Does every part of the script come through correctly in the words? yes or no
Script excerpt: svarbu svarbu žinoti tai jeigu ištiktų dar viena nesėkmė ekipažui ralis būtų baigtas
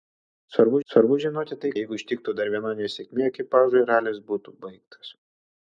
yes